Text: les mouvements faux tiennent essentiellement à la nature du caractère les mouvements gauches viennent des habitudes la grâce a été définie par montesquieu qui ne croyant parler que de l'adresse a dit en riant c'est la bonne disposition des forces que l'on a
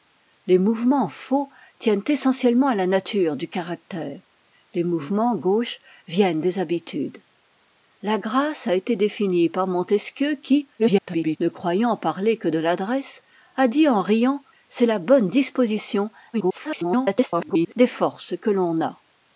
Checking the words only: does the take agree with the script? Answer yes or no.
no